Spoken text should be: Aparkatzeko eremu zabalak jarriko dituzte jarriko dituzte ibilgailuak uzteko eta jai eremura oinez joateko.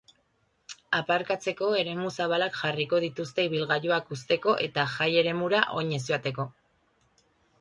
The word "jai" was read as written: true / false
true